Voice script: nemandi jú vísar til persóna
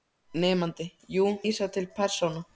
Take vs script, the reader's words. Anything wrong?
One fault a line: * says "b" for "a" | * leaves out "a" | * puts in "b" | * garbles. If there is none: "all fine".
all fine